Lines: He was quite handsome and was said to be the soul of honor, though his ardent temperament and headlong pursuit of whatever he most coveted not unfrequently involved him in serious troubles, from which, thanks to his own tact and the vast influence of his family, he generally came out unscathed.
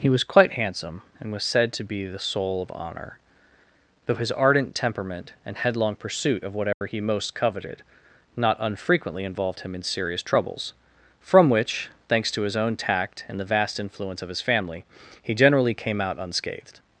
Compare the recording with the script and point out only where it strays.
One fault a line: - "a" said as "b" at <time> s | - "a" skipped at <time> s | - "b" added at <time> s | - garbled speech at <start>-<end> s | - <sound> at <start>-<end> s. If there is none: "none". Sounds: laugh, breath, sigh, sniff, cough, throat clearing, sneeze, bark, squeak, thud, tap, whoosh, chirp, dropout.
- dropout at 6.7-6.8 s